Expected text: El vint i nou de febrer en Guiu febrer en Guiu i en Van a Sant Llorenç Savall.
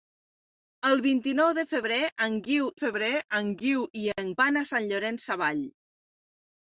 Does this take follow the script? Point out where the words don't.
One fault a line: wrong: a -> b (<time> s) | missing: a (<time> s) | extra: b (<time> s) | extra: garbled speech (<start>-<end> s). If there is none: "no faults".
no faults